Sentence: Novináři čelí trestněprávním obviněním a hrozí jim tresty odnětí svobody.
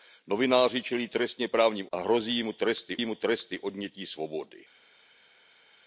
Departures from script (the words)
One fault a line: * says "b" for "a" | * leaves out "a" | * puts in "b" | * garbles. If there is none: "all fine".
* leaves out "obviněním"
* puts in "jim tresty"